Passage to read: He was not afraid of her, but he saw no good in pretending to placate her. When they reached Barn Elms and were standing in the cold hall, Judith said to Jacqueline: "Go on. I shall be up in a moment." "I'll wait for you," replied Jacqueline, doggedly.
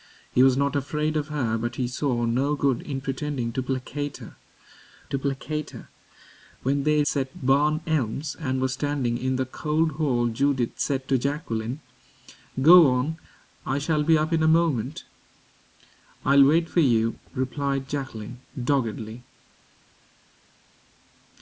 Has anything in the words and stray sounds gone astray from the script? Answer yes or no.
yes